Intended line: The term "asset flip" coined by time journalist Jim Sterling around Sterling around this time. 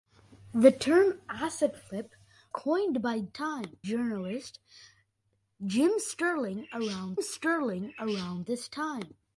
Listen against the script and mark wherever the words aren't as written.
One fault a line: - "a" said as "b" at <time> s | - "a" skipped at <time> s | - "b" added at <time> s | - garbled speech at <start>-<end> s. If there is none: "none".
none